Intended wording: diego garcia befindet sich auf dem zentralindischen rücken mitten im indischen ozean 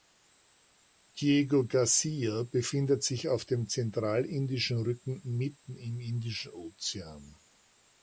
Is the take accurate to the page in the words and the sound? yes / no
yes